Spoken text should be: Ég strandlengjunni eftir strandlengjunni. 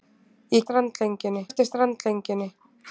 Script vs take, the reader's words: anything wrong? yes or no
no